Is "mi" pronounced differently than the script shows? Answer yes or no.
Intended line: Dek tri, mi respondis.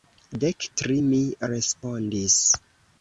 no